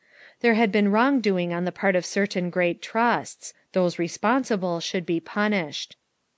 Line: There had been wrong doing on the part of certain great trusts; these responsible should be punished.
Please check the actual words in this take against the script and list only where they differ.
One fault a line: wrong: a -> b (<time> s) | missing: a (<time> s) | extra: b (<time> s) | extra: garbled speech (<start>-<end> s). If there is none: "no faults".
wrong: these -> those (3.7 s)